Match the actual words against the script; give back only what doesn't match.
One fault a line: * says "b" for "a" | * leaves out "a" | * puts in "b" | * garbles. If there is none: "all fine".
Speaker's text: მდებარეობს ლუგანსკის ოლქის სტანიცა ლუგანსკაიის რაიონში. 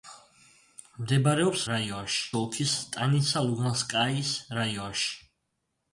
* says "რაიონში" for "ლუგანსკის"